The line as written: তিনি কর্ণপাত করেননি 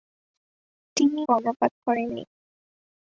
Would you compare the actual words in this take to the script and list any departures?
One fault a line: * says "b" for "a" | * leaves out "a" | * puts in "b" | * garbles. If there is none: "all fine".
all fine